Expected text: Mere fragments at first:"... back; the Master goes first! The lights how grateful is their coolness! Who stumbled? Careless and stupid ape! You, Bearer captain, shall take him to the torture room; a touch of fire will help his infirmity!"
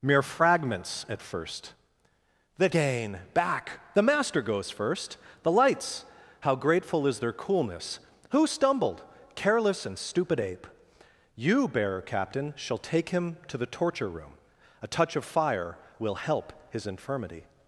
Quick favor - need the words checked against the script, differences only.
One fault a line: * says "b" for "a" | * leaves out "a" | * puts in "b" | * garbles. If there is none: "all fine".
* puts in "the gain"